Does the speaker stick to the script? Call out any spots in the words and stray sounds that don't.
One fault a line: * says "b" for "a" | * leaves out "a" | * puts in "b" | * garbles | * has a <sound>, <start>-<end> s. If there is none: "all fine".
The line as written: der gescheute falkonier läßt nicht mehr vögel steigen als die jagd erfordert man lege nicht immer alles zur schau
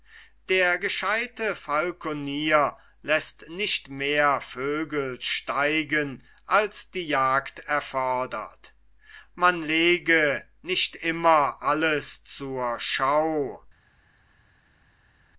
all fine